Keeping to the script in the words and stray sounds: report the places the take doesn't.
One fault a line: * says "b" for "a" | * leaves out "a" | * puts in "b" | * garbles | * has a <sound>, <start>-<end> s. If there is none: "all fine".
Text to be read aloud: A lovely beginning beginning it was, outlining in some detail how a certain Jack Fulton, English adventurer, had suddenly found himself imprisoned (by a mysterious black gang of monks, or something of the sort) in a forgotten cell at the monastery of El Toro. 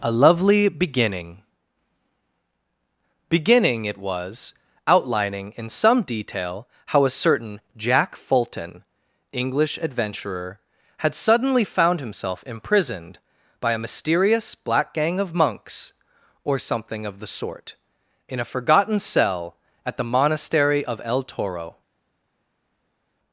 all fine